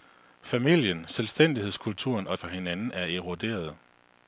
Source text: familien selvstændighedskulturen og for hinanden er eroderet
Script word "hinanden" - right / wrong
right